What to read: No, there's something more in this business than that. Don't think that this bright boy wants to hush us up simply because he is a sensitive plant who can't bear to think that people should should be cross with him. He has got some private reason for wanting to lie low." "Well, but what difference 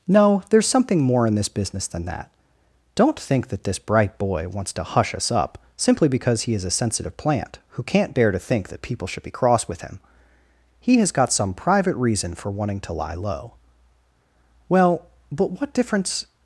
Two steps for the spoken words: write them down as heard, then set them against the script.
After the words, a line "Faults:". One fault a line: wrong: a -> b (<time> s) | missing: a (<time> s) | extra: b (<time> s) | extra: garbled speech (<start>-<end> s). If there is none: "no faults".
No, there's something more in this business than that. Don't think that this bright boy wants to hush us up simply because he is a sensitive plant who can't bear to think that people should be cross with him. He has got some private reason for wanting to lie low." "Well, but what difference
Faults:
missing: should (9.2 s)